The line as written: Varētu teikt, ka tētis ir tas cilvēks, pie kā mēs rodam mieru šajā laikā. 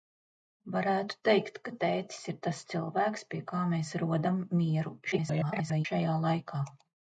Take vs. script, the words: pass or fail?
fail